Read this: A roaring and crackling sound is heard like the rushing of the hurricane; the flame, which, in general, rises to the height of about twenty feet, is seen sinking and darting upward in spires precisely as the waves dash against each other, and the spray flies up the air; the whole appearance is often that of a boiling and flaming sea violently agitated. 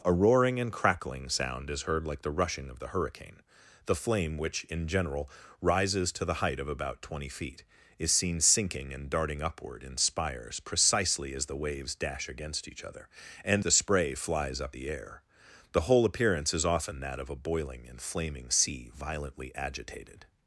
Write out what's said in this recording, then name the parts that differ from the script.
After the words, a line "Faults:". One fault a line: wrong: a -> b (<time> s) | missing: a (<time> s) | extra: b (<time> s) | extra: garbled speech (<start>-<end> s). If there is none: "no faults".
A roaring and crackling sound is heard like the rushing of the hurricane; the flame, which, in general, rises to the height of about twenty feet, is seen sinking and darting upward in spires precisely as the waves dash against each other, and the spray flies up the air; the whole appearance is often that of a boiling and flaming sea violently agitated.
Faults:
no faults